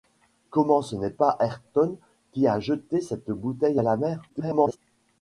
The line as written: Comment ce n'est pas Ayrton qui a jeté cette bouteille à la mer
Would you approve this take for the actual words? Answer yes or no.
no